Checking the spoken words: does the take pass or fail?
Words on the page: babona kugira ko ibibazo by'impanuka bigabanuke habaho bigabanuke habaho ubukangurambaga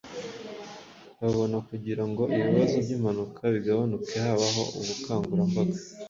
fail